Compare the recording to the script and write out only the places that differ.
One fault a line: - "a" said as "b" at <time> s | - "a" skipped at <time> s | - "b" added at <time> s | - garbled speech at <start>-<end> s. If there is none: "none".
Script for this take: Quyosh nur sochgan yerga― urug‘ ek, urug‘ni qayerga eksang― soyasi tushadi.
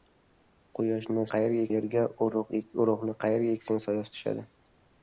- "sochgan" said as "qayerga" at 1.4 s